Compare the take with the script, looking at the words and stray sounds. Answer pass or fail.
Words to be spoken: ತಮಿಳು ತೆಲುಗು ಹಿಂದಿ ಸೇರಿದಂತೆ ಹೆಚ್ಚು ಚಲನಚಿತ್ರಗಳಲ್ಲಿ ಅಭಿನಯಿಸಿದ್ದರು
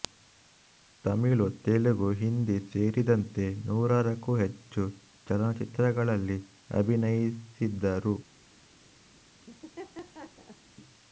fail